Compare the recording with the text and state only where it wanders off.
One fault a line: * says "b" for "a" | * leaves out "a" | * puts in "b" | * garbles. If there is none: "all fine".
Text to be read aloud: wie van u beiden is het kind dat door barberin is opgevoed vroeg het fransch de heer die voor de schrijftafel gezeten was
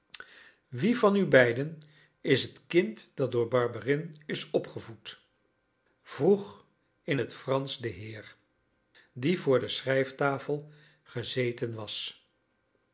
* puts in "in"